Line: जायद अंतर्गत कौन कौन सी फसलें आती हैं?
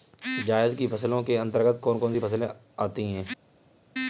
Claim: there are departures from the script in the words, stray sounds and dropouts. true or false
true